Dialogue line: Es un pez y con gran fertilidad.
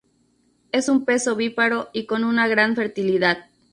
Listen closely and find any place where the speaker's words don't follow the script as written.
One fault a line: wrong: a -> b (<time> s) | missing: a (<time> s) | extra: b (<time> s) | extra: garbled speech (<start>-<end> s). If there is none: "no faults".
extra: ovíparo (1.3 s)
extra: una (2.2 s)